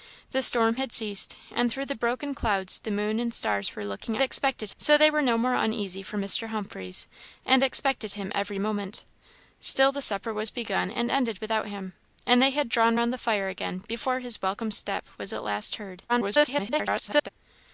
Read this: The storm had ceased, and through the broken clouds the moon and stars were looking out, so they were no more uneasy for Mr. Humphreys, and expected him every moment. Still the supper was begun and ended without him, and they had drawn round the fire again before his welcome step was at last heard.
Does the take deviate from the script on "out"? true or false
true